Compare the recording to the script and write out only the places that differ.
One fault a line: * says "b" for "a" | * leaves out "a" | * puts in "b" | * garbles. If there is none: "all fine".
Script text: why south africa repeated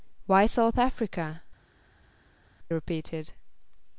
all fine